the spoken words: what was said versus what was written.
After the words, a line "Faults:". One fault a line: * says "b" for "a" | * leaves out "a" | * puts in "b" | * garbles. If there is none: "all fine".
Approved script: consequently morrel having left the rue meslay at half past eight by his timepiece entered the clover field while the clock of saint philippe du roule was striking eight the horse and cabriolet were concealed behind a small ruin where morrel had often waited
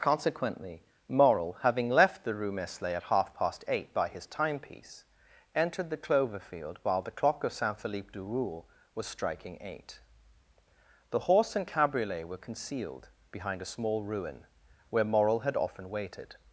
consequently morrel having left the rue meslay at half past eight by his timepiece entered the clover field while the clock of saint philippe du roule was striking eight the horse and cabriolet were concealed behind a small ruin where morrel had often waited
Faults:
all fine